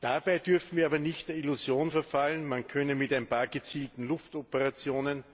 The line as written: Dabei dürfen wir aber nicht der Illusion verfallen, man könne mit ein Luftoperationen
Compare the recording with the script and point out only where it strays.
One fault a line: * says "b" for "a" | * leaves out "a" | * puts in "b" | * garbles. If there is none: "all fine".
* puts in "paar gezielten"